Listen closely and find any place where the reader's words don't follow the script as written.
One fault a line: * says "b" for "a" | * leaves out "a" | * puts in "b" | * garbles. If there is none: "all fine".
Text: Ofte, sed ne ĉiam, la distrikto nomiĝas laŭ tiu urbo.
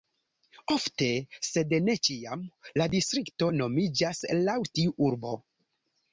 all fine